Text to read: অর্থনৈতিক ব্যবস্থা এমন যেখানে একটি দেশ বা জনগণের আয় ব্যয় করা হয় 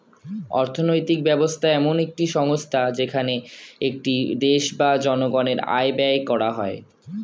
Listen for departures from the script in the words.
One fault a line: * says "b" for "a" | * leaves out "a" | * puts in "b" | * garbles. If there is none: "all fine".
* puts in "একটি সংস্থা"